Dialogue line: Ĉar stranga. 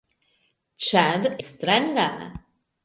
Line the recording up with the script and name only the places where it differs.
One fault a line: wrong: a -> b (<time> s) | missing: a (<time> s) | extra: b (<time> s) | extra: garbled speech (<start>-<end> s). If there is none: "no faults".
no faults